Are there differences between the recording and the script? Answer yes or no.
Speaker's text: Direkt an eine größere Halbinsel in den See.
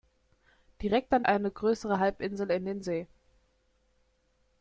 no